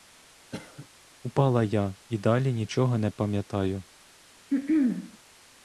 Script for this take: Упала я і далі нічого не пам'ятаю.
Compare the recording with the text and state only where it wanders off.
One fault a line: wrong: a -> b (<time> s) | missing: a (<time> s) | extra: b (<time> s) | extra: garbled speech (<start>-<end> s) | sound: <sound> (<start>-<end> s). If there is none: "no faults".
sound: cough (0.5-0.9 s)
sound: throat clearing (4.5-5.2 s)